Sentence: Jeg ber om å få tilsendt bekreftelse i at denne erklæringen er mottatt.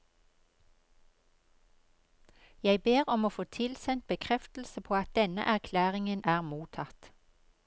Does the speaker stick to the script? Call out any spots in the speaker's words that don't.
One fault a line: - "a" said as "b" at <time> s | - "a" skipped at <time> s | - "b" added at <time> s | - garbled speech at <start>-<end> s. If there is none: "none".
- "i" said as "på" at 4.8 s